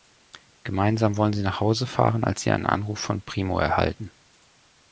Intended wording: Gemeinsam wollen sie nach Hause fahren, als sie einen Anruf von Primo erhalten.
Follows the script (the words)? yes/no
yes